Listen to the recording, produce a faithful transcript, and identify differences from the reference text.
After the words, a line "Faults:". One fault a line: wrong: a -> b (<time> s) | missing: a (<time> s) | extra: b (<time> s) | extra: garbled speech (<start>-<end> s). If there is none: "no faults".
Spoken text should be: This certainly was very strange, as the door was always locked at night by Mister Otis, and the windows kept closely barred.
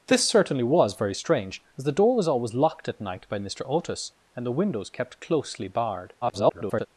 This certainly was very strange, as the door was always locked at night by Mister Otis, and the windows kept closely barred. [garbled]
Faults:
extra: garbled speech (6.2-6.9 s)